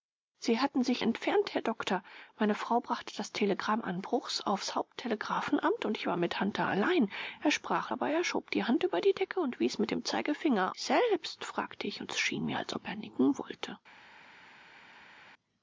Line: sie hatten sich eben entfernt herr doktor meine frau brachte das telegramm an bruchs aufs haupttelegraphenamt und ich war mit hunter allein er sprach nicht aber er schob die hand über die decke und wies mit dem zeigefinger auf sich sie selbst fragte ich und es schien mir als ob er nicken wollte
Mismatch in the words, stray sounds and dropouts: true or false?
true